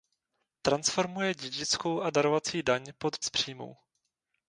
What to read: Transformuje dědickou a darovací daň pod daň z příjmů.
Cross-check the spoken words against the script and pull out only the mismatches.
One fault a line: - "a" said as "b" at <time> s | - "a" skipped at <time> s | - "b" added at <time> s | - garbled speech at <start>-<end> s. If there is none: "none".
- "daň" skipped at 3.1 s